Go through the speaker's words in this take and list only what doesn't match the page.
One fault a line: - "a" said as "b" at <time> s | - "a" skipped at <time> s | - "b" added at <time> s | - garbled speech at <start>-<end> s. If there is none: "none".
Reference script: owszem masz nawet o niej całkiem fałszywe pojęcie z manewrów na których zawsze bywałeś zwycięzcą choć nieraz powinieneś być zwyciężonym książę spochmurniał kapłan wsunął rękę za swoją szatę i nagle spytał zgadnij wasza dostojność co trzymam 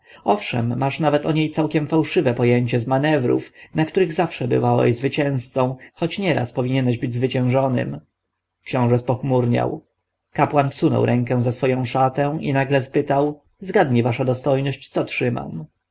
none